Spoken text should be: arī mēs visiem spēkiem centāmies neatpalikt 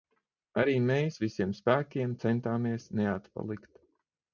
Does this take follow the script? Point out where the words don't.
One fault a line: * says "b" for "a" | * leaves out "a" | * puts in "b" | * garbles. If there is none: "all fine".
all fine